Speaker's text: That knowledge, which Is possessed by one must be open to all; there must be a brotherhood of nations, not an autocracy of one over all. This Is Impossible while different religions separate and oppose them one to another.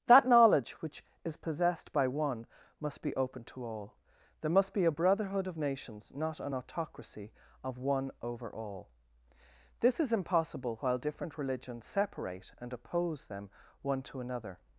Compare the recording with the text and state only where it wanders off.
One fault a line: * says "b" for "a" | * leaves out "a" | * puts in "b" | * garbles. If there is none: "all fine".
all fine